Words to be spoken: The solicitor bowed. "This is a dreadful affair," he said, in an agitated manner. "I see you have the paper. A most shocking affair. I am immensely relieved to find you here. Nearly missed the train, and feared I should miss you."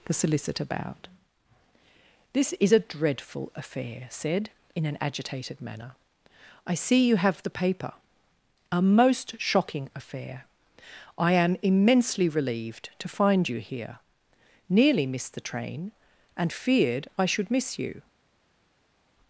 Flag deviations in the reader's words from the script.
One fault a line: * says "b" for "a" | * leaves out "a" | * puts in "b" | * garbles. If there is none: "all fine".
* leaves out "he"